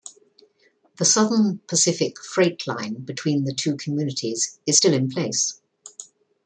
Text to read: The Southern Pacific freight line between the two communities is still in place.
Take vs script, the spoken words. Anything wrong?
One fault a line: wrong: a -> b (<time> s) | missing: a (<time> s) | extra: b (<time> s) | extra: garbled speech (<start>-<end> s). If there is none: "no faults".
no faults